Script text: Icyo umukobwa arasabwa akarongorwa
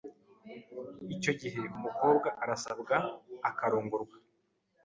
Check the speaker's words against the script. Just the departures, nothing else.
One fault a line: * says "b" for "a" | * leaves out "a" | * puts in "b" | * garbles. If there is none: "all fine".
* puts in "gihe"